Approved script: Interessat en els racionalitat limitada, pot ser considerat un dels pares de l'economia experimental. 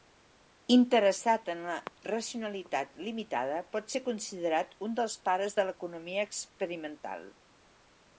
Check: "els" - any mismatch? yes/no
yes